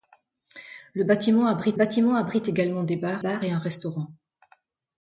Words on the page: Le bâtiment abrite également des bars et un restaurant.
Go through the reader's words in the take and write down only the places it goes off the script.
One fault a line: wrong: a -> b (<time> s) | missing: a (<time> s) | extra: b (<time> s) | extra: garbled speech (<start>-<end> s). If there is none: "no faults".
extra: bâtiment abrite (1.7 s)
extra: bars (3.2 s)